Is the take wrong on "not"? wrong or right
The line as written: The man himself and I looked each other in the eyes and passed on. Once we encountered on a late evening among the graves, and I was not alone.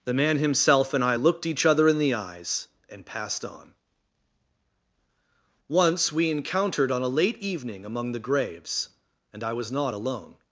right